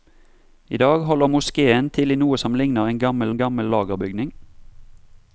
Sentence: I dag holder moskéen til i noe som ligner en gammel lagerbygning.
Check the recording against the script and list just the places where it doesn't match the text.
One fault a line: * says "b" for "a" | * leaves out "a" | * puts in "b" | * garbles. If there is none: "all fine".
* puts in "en gammel"